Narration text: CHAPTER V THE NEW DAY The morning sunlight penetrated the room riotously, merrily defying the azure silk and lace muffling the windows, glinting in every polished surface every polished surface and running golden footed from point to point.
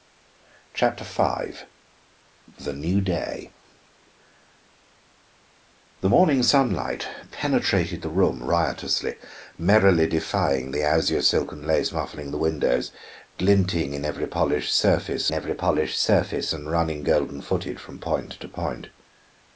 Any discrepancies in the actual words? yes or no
no